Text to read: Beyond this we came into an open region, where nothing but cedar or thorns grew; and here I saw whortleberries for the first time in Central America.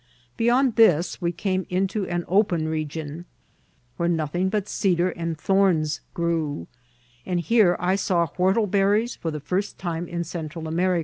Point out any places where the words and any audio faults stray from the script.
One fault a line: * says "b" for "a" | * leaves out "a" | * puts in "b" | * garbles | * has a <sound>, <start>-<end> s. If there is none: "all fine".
* says "and" for "or"